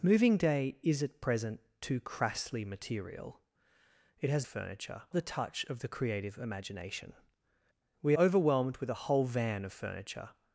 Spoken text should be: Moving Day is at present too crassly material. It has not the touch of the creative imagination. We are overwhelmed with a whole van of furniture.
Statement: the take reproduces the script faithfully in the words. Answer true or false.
false